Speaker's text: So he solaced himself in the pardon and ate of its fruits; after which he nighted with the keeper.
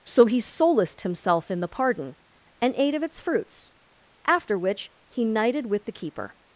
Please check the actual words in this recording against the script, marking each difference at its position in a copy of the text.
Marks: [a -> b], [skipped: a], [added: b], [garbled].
So he solaced himself in the pardon and ate of its fruits; after which he nighted with the keeper.